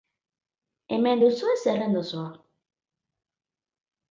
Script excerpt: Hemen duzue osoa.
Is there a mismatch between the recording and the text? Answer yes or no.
yes